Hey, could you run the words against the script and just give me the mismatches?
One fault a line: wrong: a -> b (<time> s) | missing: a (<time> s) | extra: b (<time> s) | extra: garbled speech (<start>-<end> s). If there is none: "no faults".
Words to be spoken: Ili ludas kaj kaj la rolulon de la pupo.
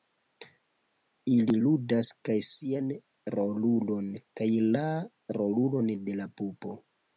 extra: sian rolulon (2.5 s)